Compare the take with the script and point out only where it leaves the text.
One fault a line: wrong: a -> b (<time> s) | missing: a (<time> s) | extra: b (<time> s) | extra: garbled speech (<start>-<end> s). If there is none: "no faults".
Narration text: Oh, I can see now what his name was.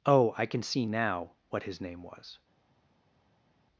no faults